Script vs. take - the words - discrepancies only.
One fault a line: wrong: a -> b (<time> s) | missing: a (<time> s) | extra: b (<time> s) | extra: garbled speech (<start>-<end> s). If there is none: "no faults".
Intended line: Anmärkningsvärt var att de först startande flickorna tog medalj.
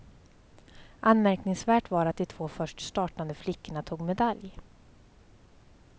extra: två (2.2 s)